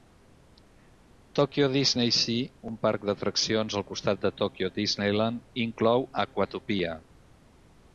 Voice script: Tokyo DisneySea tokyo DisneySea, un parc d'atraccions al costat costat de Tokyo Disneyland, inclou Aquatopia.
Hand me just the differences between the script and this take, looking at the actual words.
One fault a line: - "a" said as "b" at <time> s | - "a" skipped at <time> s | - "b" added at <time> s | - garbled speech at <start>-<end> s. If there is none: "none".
- "tokyo DisneySea" skipped at 2.5 s
- "costat" skipped at 4.3 s